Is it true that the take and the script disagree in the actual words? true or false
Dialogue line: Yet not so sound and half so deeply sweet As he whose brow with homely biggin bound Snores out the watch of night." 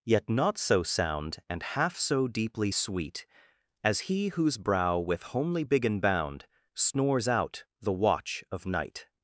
false